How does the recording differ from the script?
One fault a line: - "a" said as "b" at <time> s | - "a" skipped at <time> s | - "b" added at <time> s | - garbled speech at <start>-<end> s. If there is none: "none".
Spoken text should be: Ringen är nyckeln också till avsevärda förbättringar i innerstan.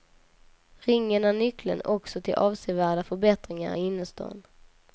none